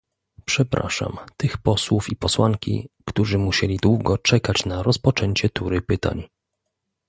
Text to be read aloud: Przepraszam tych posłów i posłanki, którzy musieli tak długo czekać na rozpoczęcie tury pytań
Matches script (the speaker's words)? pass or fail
fail